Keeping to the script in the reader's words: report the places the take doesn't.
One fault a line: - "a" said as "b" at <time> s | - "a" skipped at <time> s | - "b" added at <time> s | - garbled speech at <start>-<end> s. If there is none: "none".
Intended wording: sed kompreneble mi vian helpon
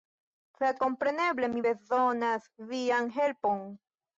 - "bezonas" added at 1.7 s